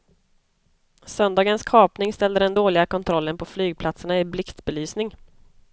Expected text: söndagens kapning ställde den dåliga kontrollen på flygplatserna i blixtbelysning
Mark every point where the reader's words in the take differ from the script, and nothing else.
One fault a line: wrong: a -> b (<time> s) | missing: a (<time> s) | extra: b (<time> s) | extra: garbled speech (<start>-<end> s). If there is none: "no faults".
no faults